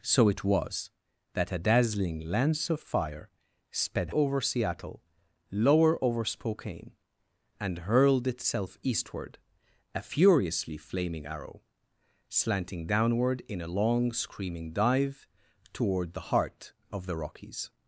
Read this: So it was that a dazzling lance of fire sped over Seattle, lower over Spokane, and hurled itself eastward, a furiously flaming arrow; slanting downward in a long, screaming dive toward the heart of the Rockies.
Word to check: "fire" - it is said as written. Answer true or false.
true